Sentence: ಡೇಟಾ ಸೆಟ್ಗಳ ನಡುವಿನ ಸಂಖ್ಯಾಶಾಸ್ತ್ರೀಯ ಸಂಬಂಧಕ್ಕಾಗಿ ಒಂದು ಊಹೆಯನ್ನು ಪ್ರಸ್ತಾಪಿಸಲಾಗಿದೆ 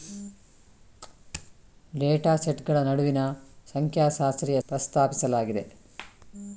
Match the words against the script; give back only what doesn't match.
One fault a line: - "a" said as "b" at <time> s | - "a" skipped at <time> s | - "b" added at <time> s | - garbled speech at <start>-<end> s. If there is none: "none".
- "ಸಂಬಂಧಕ್ಕಾಗಿ ಒಂದು ಊಹೆಯನ್ನು" skipped at 4.6 s